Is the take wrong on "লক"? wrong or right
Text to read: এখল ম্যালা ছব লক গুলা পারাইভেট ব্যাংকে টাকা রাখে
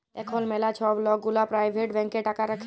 right